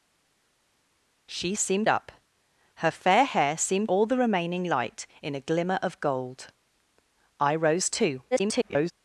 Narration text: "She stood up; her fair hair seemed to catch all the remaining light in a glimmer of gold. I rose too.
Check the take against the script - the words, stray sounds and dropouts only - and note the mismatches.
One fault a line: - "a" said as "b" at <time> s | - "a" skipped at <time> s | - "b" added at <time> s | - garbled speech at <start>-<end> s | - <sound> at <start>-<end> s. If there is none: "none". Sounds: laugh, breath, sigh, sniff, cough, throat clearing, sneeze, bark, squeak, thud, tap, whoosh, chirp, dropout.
- "stood" said as "seemed" at 1.6 s
- "to catch" skipped at 3.9 s
- garbled speech at 8.3-8.9 s